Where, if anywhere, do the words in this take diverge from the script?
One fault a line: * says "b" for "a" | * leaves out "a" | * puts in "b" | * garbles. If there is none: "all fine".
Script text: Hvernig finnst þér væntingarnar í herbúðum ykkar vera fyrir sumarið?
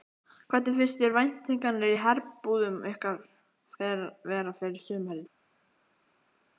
all fine